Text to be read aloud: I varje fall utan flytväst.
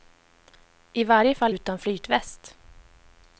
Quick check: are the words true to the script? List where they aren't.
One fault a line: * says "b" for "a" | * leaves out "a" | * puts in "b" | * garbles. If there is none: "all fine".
all fine